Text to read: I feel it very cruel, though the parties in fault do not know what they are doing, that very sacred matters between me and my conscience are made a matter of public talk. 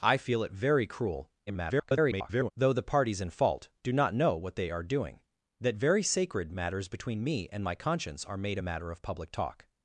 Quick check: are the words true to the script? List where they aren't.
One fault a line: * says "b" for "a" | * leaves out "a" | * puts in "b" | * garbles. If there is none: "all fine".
* garbles